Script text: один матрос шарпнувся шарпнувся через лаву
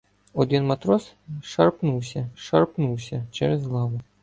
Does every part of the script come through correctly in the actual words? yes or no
yes